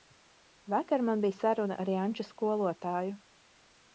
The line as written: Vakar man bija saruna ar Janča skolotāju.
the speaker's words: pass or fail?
pass